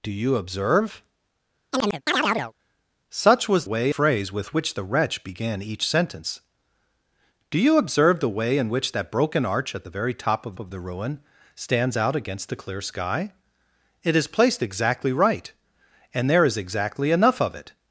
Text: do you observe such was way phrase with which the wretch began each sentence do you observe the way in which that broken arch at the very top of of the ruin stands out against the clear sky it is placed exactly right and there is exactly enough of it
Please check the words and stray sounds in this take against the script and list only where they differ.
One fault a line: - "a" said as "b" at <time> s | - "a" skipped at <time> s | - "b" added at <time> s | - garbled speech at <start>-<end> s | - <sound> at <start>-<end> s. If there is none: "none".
- chirp at 1.7-2.5 s